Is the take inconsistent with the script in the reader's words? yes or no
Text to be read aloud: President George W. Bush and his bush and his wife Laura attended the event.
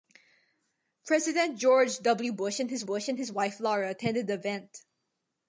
no